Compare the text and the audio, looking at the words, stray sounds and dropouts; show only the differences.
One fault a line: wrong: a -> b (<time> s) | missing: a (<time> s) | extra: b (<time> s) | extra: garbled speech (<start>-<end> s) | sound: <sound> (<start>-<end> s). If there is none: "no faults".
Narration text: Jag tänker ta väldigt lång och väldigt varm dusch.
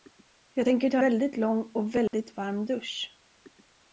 sound: dropout (2.1-2.1 s)